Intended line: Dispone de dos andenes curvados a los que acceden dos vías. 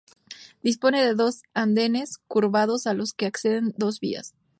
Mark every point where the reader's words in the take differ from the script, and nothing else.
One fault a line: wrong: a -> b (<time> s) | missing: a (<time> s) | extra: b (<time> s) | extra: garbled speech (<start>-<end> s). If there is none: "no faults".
no faults